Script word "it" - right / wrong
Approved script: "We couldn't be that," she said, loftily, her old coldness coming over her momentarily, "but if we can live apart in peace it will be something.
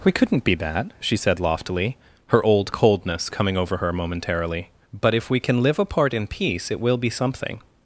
right